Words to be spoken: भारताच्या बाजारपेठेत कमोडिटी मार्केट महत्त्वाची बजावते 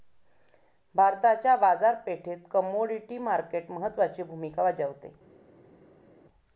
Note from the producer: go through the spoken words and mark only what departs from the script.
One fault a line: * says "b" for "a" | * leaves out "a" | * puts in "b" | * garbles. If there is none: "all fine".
* puts in "भूमिका"